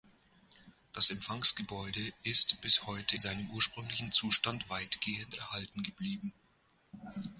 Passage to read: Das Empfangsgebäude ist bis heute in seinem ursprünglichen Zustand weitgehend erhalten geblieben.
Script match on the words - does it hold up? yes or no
no